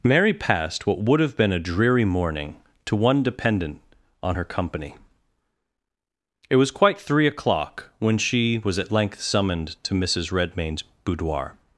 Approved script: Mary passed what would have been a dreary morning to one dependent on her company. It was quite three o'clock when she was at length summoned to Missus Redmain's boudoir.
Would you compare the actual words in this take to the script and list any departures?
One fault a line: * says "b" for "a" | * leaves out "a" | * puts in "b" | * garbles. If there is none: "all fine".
all fine